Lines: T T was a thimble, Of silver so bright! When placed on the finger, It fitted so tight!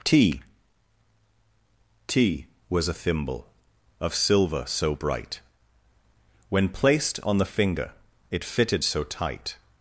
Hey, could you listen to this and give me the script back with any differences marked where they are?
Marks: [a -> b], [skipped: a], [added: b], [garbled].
T T was a thimble, Of silver so bright! When placed on the finger, It fitted so tight!